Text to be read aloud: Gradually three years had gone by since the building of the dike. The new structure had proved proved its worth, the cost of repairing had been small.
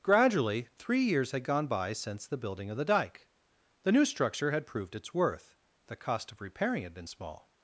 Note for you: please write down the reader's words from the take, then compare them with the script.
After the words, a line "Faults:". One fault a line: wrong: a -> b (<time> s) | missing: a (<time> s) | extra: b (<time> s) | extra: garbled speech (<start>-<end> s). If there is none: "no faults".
Gradually three years had gone by since the building of the dike. The new structure had proved its worth, the cost of repairing had been small.
Faults:
missing: proved (5.0 s)